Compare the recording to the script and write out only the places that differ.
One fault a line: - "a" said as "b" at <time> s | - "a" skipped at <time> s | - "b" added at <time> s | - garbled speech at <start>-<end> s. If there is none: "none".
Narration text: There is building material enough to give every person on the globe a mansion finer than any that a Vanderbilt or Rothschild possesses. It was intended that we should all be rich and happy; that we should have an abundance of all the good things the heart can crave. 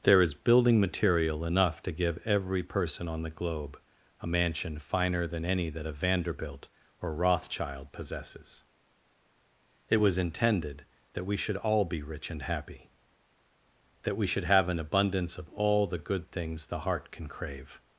none